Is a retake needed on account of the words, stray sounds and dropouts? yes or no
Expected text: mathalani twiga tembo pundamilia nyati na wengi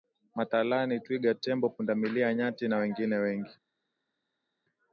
yes